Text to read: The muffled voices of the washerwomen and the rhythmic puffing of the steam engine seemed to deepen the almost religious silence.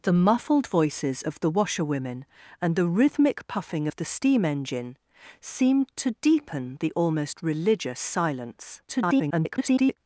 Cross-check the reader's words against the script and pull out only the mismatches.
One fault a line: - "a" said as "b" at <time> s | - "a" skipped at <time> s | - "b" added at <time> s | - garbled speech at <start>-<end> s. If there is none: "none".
- garbled speech at 8.9-10.0 s